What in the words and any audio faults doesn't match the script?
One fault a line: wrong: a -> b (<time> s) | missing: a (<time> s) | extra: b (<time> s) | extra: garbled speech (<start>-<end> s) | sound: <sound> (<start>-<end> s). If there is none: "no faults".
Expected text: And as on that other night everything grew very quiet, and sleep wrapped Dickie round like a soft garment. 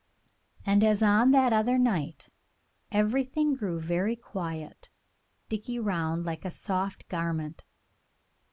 missing: and sleep wrapped (4.9 s)